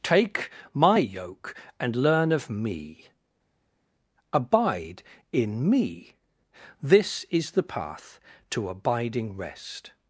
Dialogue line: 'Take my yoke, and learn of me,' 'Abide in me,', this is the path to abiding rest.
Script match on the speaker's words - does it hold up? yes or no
yes